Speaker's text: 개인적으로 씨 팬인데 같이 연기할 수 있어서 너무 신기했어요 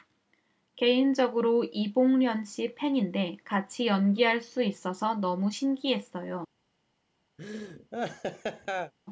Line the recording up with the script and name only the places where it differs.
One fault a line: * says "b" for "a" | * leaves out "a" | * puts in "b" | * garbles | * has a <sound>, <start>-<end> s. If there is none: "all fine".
* puts in "이봉련"
* has a laugh, 7.4-8.9 s